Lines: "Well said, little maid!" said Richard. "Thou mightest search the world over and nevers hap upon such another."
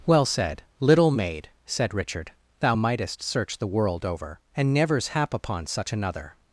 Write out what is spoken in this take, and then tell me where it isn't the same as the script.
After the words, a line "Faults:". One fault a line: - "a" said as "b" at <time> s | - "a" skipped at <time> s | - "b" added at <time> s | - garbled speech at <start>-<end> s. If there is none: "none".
"Well said, little maid!" said Richard. "Thou mightest search the world over and nevers hap upon such another."
Faults:
none